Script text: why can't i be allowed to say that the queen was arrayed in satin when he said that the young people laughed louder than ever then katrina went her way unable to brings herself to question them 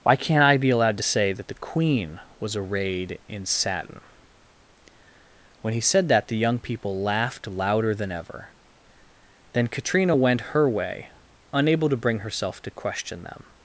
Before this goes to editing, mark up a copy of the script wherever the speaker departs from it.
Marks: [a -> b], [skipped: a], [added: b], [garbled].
why can't i be allowed to say that the queen was arrayed in satin when he said that the young people laughed louder than ever then katrina went her way unable to [brings -> bring] herself to question them